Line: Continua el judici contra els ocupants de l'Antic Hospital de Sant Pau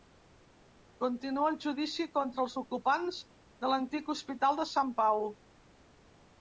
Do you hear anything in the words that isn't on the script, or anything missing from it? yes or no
no